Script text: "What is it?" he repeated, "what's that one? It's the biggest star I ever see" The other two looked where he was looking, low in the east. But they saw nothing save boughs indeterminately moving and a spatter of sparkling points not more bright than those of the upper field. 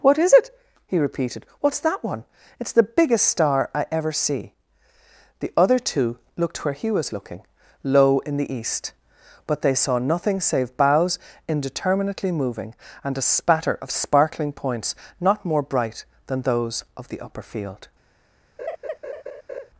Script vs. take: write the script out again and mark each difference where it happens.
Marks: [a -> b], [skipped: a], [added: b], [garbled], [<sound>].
"What is it?" he repeated, "what's that one? It's the biggest star I ever see" The other two looked where he was looking, low in the east. But they saw nothing save boughs indeterminately moving and a spatter of sparkling points not more bright than those of the upper field. [laugh]